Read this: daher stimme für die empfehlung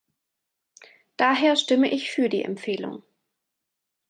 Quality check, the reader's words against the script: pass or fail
fail